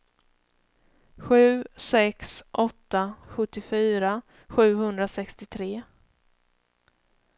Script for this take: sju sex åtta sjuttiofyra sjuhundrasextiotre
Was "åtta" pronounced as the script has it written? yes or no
yes